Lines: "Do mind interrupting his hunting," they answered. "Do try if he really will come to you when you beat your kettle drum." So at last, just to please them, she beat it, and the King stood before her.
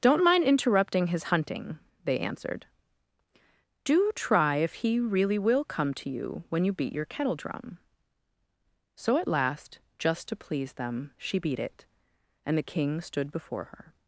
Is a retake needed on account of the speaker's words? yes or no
yes